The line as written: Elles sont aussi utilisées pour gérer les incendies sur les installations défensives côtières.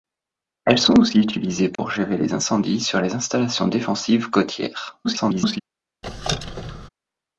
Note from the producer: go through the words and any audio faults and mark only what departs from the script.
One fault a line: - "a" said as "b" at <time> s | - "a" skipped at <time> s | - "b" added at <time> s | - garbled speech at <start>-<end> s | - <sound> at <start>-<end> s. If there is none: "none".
- dropout at 1.8-1.8 s
- garbled speech at 5.0-5.6 s
- squeak at 6.0-6.9 s